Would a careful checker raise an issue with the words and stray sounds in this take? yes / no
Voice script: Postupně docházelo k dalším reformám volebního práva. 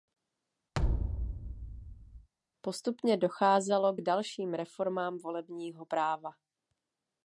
yes